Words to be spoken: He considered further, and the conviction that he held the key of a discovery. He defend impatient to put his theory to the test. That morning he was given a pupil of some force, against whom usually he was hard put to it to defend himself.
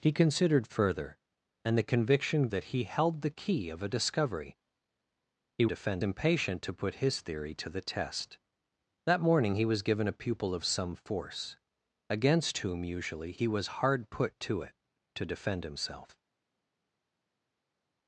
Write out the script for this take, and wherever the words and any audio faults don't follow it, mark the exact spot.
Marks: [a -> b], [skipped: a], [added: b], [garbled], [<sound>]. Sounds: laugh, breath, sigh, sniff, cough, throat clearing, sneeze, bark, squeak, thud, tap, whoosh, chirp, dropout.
He considered further, and the conviction that he held the key of a discovery. He defend impatient to put his theory to the test. That morning he was given a pupil of some force, against whom usually he was hard put to it to defend himself.